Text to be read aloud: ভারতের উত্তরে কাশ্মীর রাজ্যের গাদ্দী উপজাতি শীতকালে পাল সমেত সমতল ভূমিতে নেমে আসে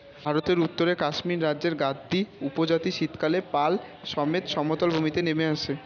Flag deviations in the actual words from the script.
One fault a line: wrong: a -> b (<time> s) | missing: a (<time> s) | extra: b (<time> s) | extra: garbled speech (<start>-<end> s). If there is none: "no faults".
no faults